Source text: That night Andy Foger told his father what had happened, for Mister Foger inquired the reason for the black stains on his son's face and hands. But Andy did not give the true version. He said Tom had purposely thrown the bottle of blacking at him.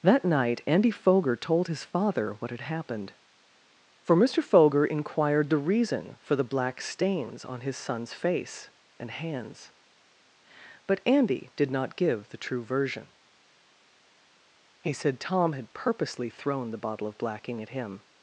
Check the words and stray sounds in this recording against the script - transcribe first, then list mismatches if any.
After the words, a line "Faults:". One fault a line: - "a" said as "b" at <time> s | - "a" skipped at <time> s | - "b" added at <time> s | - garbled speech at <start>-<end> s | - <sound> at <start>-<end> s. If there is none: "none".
That night Andy Foger told his father what had happened, for Mister Foger inquired the reason for the black stains on his son's face and hands. But Andy did not give the true version. He said Tom had purposely thrown the bottle of blacking at him.
Faults:
none